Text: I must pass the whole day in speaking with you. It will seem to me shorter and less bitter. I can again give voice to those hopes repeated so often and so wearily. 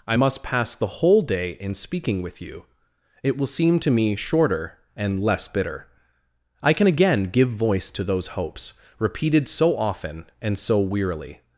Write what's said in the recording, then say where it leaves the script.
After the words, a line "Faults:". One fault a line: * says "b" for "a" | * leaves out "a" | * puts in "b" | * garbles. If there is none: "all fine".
I must pass the whole day in speaking with you. It will seem to me shorter and less bitter. I can again give voice to those hopes repeated so often and so wearily.
Faults:
all fine